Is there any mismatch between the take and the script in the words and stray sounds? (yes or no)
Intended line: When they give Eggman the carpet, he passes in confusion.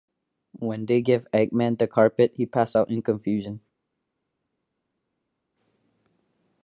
yes